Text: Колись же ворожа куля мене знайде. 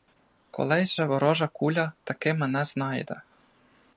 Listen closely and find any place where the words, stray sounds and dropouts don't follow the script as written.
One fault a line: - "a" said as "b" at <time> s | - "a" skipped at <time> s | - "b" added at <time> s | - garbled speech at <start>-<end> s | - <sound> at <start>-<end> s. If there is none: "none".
- "таки" added at 2.0 s